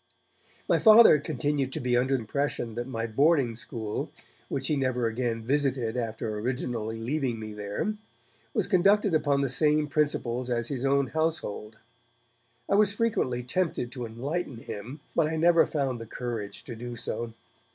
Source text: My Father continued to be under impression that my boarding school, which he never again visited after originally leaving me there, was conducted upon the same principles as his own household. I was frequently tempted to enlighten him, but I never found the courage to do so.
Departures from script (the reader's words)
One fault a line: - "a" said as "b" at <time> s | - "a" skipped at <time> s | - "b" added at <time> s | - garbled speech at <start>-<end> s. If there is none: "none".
none